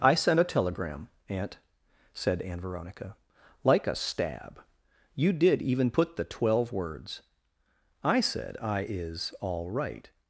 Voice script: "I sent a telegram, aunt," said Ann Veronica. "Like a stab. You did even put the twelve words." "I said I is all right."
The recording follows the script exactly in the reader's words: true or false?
true